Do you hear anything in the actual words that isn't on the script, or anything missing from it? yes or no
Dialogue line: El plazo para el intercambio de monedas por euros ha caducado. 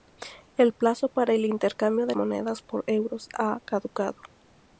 no